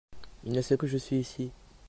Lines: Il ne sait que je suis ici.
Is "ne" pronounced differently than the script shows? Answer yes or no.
no